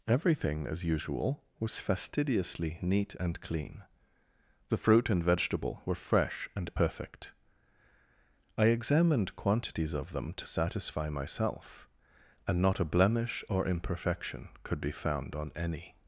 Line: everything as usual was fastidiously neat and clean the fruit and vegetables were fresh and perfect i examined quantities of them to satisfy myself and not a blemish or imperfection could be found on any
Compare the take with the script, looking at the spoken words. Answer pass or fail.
fail